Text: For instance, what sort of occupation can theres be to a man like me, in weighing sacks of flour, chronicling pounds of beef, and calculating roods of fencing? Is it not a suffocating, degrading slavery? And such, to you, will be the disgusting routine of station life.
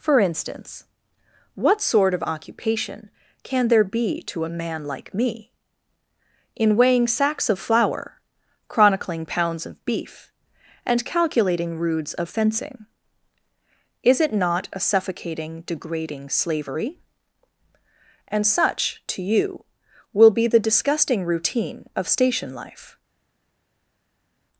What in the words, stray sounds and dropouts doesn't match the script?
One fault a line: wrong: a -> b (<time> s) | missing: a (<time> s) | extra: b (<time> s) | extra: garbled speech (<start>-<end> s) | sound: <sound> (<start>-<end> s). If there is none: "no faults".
wrong: theres -> there (3.7 s)